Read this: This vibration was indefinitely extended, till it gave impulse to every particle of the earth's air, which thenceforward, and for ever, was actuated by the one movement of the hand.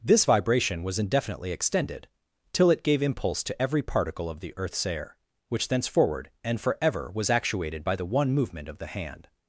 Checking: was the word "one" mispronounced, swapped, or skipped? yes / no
no